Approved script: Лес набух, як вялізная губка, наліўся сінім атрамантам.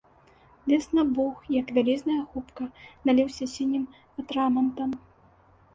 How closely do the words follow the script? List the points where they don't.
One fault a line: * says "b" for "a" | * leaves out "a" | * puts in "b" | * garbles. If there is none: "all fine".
all fine